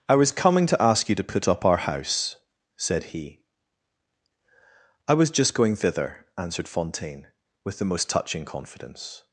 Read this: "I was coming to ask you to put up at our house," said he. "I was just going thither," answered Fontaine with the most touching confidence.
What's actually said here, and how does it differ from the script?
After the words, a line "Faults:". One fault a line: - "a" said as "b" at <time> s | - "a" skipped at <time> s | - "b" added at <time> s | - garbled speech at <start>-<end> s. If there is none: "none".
"I was coming to ask you to put up our house," said he. "I was just going thither," answered Fontaine with the most touching confidence.
Faults:
- "at" skipped at 1.6 s